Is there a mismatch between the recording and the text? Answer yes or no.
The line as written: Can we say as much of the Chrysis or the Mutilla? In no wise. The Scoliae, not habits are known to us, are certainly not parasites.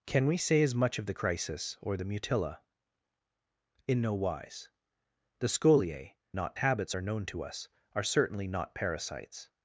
no